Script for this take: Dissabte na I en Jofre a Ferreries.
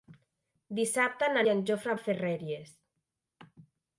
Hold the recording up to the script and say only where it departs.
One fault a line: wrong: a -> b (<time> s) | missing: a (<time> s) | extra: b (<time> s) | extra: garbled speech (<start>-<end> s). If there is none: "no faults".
no faults